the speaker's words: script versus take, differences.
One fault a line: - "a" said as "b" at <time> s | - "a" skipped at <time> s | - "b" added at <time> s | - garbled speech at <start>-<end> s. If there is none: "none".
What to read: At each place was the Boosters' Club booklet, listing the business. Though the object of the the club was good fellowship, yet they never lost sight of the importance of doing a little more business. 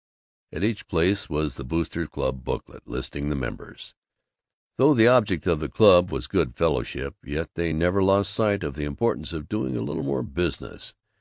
- "business" said as "members" at 3.4 s
- "the" skipped at 5.7 s